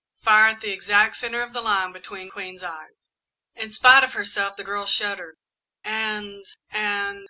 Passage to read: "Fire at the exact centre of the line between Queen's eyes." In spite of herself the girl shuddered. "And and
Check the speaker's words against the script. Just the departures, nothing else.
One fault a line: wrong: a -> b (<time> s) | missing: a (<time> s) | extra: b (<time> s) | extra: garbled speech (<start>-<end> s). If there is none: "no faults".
no faults